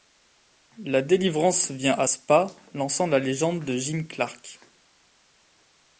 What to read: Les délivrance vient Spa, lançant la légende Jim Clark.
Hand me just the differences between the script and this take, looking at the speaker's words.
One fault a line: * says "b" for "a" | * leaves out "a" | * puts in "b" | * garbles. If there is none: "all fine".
* says "La" for "Les"
* puts in "à"
* puts in "de"